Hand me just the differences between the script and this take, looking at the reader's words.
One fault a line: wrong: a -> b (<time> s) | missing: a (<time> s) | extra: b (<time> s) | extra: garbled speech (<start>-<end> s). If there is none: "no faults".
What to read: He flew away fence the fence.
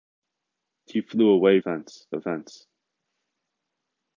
no faults